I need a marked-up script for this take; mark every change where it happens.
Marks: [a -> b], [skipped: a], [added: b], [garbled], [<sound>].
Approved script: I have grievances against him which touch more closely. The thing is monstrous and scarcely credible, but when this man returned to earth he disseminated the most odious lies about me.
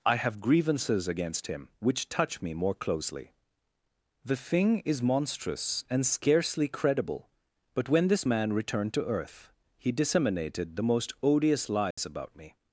I have grievances against him which touch [added: me] more closely. The thing is monstrous and scarcely credible, but when this man returned to earth he disseminated the most odious lies [dropout] about me.